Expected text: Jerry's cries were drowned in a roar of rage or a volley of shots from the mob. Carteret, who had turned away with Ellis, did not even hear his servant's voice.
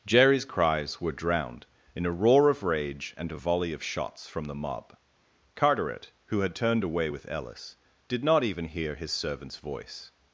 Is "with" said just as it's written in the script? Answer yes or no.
yes